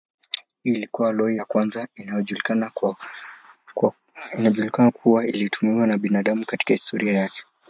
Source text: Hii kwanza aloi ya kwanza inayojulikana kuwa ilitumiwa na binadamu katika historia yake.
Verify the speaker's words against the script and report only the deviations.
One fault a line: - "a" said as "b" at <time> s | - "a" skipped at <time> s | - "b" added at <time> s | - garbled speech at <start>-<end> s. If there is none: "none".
- "kwanza" said as "ilikuwa" at 0.7 s